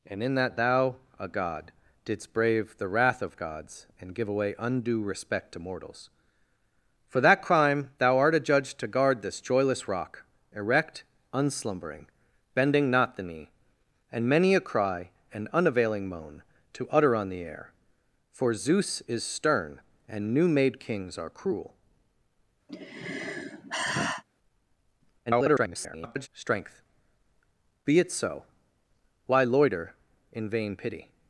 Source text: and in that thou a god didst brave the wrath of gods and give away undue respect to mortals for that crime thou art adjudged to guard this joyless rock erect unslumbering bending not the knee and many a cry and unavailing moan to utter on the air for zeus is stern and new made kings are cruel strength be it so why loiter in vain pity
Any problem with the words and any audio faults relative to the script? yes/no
yes